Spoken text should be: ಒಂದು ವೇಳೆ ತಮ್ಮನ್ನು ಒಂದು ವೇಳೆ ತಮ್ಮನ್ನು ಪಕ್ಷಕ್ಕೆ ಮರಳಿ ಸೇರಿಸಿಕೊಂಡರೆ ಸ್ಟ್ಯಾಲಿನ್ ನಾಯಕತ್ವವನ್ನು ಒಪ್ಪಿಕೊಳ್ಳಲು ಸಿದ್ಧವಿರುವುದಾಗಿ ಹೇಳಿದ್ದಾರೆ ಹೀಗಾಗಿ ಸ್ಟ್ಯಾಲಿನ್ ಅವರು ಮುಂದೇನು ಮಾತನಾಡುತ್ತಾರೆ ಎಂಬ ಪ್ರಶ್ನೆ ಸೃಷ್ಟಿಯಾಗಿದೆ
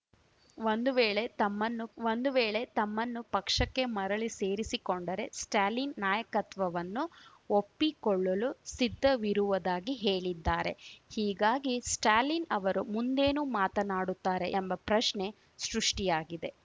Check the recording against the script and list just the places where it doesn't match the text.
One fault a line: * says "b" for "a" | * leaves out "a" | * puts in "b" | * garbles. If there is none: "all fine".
all fine